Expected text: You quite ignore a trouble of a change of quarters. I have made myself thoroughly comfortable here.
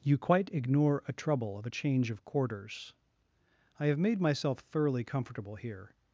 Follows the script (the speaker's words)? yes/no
yes